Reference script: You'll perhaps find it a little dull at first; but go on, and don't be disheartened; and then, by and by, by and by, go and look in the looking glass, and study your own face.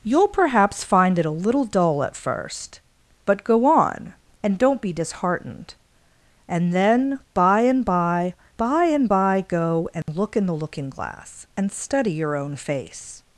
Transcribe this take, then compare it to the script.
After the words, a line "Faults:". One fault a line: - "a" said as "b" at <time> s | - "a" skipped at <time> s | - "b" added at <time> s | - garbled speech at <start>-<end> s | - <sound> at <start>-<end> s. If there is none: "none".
You'll perhaps find it a little dull at first; but go on, and don't be disheartened; and then, by and by, by and by, go and look in the looking glass, and study your own face.
Faults:
- dropout at 10.0-10.1 s